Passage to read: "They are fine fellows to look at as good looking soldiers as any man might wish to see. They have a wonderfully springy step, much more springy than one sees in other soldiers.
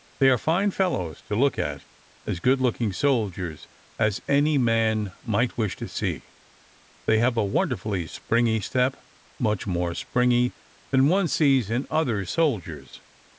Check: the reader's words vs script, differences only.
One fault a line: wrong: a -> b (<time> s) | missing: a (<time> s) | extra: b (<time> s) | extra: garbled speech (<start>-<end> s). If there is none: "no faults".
no faults